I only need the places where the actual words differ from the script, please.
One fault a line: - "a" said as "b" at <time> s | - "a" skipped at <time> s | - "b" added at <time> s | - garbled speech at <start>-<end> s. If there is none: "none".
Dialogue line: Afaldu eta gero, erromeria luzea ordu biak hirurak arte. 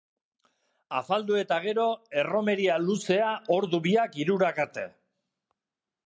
none